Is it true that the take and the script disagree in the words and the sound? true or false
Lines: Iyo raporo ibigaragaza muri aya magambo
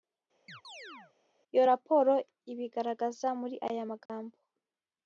true